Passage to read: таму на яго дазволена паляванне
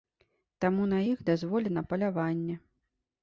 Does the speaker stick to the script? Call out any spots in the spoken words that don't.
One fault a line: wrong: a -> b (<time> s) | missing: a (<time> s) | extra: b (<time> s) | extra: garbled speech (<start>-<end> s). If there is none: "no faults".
wrong: яго -> іх (1.1 s)